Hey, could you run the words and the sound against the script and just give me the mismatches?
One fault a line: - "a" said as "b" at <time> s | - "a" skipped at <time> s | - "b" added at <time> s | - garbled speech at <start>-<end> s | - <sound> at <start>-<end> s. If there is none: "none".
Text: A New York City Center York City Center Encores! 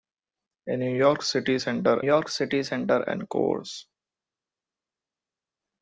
none